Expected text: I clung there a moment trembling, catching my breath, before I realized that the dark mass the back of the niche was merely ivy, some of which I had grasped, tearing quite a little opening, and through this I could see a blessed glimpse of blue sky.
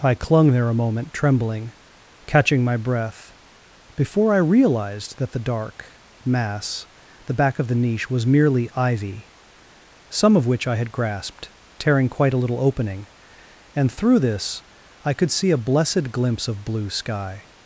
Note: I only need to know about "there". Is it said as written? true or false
true